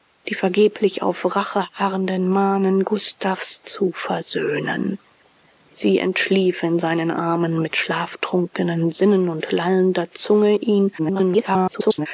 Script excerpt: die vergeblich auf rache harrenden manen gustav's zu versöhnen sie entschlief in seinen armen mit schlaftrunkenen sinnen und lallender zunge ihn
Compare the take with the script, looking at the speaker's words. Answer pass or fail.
fail